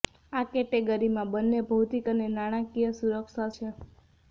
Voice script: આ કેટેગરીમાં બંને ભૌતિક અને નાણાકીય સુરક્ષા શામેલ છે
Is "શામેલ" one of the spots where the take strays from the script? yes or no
yes